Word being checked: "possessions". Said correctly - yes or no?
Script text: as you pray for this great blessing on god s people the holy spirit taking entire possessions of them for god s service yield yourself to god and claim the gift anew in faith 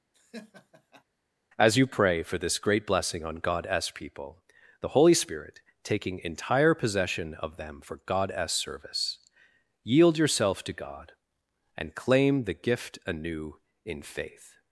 no